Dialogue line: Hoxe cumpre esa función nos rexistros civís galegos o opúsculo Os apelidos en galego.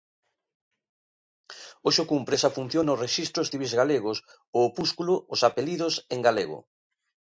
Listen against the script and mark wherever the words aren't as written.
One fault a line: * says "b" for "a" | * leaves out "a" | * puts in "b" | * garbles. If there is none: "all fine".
all fine